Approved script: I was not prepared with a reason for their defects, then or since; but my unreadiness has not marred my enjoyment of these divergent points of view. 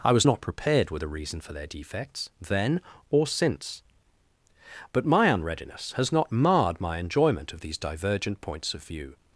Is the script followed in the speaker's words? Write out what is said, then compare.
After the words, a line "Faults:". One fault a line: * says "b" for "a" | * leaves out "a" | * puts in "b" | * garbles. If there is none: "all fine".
I was not prepared with a reason for their defects, then or since; but my unreadiness has not marred my enjoyment of these divergent points of view.
Faults:
all fine